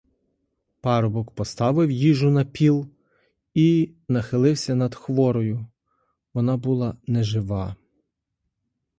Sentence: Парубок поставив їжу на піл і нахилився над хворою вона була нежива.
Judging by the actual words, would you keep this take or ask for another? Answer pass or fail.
pass